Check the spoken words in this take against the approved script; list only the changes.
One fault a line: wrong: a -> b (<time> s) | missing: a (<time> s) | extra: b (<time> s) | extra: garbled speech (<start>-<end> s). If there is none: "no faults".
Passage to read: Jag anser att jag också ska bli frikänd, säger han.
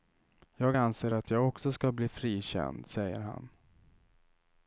no faults